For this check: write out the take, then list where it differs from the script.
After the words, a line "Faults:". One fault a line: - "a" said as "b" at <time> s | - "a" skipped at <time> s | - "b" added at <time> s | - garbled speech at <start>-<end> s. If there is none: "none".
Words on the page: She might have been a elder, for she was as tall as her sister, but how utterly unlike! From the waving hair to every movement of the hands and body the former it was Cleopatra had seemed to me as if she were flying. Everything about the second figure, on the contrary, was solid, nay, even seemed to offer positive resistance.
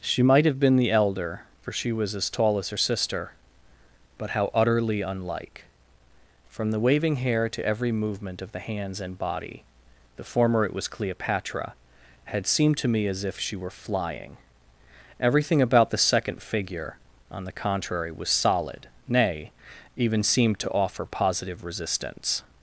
She might have been the elder, for she was as tall as her sister, but how utterly unlike! From the waving hair to every movement of the hands and body the former it was Cleopatra had seemed to me as if she were flying. Everything about the second figure, on the contrary, was solid, nay, even seemed to offer positive resistance.
Faults:
- "a" said as "the" at 0.8 s